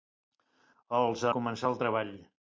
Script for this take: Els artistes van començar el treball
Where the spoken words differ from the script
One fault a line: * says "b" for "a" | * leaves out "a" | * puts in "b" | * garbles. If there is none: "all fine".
* leaves out "artistes van"